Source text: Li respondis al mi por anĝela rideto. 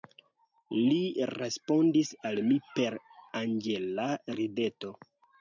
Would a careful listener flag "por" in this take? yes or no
yes